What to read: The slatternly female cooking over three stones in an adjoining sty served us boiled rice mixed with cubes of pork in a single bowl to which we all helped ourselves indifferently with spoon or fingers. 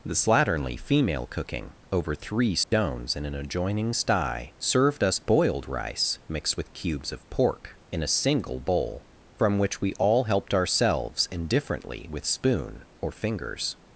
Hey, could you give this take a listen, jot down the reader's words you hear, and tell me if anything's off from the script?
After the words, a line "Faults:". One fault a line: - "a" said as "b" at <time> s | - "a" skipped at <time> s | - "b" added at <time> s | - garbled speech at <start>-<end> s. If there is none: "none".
The slatternly female cooking over three stones in an adjoining sty served us boiled rice mixed with cubes of pork in a single bowl from which we all helped ourselves indifferently with spoon or fingers.
Faults:
- "to" said as "from" at 9.4 s